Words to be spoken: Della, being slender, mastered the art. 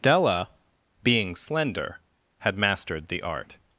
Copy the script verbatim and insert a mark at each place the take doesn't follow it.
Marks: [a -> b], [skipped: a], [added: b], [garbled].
Della, being slender, [added: had] mastered the art.